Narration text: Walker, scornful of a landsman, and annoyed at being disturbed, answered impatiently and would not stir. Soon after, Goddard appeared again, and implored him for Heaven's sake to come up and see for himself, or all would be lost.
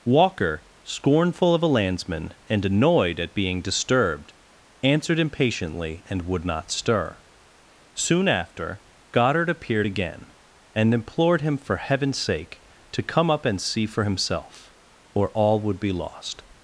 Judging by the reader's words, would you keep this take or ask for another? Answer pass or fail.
pass